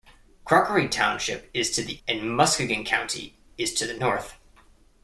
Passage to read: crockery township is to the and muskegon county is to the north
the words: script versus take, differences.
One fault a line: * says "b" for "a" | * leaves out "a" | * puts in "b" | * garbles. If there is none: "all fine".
all fine